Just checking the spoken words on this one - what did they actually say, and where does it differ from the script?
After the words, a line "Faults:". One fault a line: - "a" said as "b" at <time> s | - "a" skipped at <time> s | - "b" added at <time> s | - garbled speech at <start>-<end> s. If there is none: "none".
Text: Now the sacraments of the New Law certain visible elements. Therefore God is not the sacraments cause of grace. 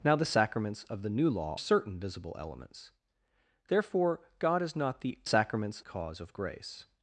Now the sacraments of the New Law certain visible elements. Therefore God is not the sacraments cause of grace.
Faults:
none